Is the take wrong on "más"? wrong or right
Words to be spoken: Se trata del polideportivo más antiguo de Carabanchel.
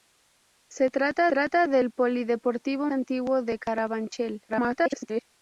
wrong